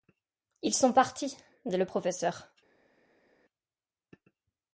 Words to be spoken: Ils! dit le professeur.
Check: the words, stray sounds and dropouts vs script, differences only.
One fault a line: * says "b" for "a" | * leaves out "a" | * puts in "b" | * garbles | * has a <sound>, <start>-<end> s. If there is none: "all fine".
* puts in "sont partis"